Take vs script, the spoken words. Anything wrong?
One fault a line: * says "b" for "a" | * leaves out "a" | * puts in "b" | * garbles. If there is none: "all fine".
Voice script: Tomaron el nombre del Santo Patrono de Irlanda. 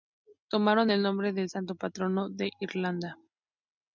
all fine